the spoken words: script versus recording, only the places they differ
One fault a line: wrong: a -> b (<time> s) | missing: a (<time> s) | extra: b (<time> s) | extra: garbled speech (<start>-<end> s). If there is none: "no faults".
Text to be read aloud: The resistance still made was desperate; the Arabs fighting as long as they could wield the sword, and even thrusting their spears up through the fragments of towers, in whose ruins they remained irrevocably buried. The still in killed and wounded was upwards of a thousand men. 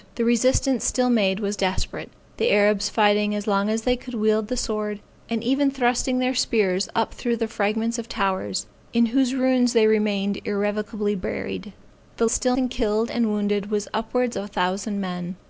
no faults